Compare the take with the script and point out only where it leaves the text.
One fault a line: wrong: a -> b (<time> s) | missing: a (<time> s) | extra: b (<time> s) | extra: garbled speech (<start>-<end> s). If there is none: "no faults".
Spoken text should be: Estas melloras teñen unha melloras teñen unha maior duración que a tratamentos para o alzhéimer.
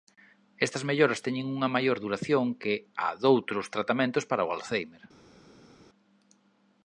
missing: melloras teñen unha (1.7 s)
extra: doutros (3.2 s)